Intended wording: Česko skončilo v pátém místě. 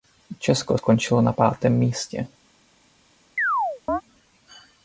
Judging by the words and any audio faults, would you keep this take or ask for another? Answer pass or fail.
fail